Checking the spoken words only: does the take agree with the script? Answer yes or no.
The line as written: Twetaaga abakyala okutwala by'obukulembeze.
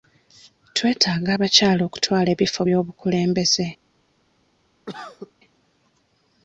no